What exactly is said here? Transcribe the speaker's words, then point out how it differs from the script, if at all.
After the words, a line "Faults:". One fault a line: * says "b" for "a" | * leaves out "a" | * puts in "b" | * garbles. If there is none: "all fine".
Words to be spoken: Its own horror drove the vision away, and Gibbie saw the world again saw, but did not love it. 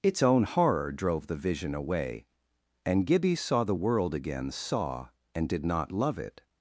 Its own horror drove the vision away, and Gibbie saw the world again saw, and did not love it.
Faults:
* says "and" for "but"